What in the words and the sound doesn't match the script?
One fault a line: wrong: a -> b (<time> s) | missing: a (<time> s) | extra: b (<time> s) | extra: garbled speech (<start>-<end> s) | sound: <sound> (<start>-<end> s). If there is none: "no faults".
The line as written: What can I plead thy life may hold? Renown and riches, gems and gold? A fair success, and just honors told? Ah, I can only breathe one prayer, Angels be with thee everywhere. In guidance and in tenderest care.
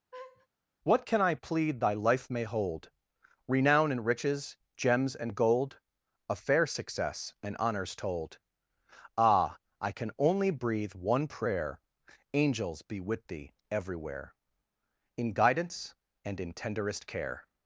sound: laugh (0.1-0.5 s)
missing: just (7.6 s)